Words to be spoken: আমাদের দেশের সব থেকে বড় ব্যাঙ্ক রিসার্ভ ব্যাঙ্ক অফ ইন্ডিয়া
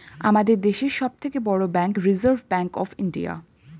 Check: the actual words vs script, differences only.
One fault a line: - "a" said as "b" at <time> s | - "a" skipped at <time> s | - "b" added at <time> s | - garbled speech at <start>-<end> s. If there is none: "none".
none